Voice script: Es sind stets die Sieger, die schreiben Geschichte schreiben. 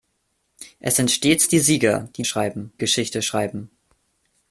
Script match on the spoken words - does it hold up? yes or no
yes